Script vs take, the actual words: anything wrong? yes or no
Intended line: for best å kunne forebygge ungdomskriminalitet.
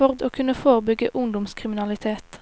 yes